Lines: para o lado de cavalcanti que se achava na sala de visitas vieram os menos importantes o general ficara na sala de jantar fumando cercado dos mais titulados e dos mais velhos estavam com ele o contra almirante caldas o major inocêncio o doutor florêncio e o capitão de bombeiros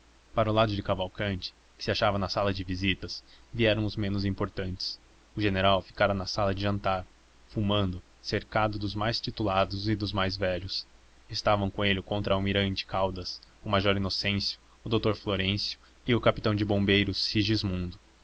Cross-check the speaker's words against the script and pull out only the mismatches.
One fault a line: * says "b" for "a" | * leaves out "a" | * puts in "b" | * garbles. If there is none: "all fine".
all fine